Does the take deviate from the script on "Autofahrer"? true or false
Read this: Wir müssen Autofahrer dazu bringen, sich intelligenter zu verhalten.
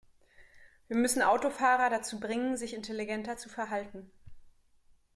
false